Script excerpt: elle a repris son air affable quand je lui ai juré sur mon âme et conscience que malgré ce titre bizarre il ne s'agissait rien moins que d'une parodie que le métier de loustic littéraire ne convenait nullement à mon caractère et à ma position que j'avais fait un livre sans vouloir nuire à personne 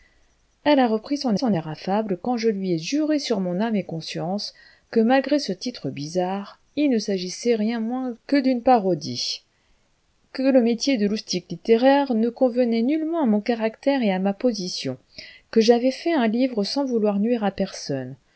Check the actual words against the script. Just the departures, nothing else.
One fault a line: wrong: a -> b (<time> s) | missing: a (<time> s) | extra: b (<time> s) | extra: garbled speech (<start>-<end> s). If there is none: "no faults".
extra: son (1.3 s)